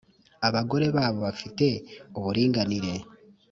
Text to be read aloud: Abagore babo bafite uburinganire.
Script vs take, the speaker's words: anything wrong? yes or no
no